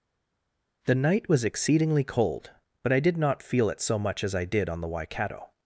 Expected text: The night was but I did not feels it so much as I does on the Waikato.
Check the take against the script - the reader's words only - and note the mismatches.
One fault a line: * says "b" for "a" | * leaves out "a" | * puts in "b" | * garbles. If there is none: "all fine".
* puts in "exceedingly cold"
* says "feel" for "feels"
* says "did" for "does"